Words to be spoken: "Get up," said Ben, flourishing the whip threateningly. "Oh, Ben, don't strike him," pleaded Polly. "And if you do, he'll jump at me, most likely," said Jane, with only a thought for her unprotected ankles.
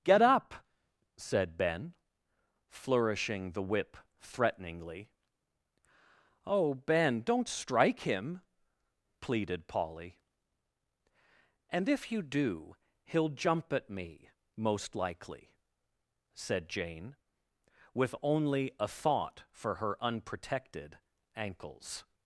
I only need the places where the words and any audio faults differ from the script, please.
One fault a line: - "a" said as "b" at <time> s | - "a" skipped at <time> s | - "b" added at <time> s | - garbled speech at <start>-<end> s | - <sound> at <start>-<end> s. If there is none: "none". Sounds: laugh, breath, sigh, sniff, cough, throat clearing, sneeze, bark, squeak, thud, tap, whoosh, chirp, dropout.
none